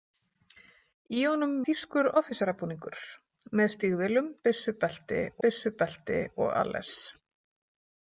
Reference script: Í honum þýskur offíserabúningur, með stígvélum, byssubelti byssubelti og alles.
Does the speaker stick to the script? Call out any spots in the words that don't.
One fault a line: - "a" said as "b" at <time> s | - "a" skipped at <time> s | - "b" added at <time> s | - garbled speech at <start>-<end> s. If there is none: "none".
none